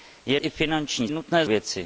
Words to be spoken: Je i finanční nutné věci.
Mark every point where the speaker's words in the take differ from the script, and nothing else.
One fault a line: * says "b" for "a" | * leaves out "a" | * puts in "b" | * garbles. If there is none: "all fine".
all fine